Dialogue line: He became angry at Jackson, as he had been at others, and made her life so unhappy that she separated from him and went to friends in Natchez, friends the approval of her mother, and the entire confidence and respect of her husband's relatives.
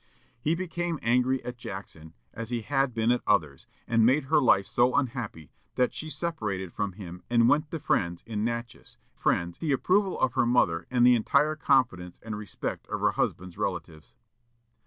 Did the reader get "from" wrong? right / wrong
right